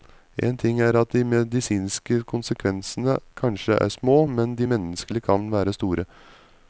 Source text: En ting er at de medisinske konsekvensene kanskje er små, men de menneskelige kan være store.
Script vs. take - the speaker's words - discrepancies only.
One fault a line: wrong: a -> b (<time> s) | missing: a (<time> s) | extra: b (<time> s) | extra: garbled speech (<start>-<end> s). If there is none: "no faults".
no faults